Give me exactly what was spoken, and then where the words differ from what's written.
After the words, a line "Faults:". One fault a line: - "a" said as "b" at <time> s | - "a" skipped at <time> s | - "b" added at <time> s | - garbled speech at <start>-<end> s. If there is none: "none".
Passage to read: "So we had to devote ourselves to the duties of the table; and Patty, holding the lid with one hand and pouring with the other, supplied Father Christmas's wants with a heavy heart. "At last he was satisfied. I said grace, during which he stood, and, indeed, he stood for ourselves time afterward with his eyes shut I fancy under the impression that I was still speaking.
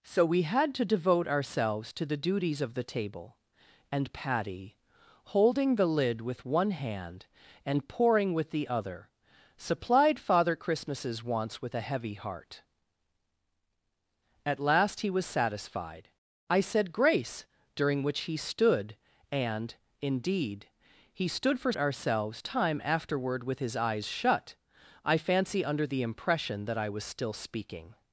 "So we had to devote ourselves to the duties of the table; and Patty, holding the lid with one hand and pouring with the other, supplied Father Christmas's wants with a heavy heart. "At last he was satisfied. I said grace, during which he stood, and, indeed, he stood for ourselves time afterward with his eyes shut I fancy under the impression that I was still speaking.
Faults:
none